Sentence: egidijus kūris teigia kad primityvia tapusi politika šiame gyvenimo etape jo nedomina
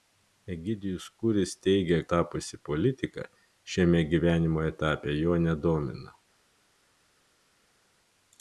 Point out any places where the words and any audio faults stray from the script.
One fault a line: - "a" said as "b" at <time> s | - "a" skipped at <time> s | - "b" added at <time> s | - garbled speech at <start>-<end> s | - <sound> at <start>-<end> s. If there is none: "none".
- "kad primityvia" skipped at 2.0 s